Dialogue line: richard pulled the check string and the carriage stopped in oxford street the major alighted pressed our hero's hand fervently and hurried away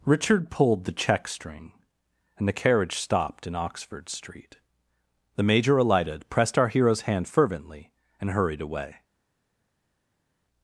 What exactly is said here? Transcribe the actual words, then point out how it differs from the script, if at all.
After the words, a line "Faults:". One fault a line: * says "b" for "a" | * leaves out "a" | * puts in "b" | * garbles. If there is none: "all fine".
richard pulled the check string and the carriage stopped in oxford street the major alighted pressed our hero's hand fervently and hurried away
Faults:
all fine